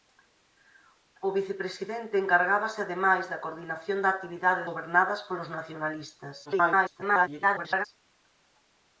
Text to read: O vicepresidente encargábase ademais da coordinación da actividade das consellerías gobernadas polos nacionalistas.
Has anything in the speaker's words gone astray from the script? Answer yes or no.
yes